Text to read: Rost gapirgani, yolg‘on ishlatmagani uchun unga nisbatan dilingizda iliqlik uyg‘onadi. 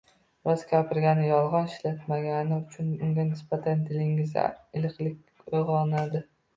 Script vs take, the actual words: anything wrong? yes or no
no